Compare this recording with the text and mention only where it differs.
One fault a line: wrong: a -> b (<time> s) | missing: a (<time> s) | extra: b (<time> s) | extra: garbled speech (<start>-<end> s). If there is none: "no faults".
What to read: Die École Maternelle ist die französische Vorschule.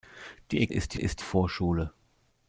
missing: École Maternelle (0.7 s)
wrong: französische -> ist (1.0 s)